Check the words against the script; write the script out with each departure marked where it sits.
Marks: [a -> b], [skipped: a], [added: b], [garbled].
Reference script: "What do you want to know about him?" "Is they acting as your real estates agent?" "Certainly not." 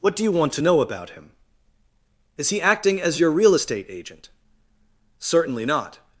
"What do you want to know about him?" "Is [they -> he] acting as your real [estates -> estate] agent?" "Certainly not."